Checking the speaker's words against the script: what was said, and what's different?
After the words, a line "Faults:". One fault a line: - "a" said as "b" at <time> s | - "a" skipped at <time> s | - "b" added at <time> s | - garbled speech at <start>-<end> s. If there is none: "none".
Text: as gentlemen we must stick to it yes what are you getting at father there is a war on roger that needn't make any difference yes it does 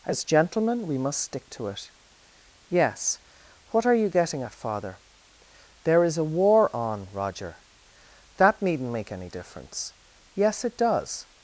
as gentlemen we must stick to it yes what are you getting at father there is a war on roger that needn't make any difference yes it does
Faults:
none